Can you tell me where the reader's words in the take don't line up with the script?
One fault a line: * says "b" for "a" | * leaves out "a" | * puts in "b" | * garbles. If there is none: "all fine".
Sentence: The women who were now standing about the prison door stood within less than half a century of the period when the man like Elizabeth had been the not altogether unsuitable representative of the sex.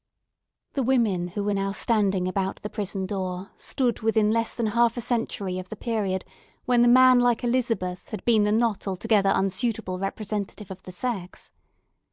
all fine